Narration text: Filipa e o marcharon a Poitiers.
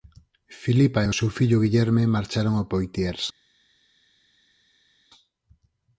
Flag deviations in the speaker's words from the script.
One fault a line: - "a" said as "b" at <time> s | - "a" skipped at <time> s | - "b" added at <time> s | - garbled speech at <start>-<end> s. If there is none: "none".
- "seu fillo Guillerme" added at 1.2 s